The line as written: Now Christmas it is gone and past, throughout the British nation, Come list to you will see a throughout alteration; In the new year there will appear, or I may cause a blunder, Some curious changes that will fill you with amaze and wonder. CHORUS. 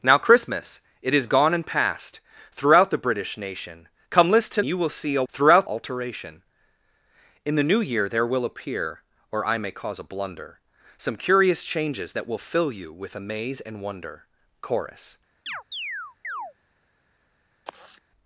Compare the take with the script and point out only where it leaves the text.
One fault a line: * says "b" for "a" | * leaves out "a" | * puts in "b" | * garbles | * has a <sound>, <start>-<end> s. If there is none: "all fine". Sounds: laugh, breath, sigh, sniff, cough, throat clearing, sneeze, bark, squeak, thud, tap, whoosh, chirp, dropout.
* has a chirp, 15.5-16.5 s
* has a sigh, 17.7-18.0 s